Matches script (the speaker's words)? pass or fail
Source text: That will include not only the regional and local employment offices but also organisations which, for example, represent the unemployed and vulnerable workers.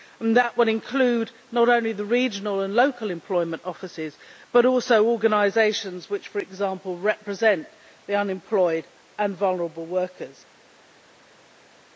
pass